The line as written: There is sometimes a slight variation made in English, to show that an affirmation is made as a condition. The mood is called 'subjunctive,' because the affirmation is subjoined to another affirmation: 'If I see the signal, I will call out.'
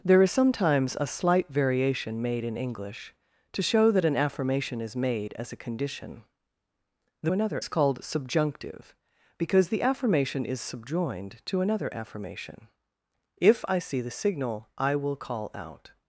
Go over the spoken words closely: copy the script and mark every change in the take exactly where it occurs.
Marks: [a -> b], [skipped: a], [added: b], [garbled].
There is sometimes a slight variation made in English, to show that an affirmation is made as a condition. The [mood -> another] is called 'subjunctive,' because the affirmation is subjoined to another affirmation: 'If I see the signal, I will call out.'